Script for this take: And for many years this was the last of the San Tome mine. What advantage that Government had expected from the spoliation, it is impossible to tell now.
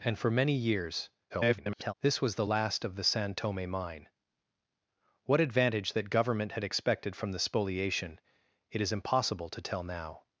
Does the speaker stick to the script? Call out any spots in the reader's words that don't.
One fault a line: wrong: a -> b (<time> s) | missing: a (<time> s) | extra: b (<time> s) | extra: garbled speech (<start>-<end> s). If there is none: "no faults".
extra: garbled speech (1.3-1.9 s)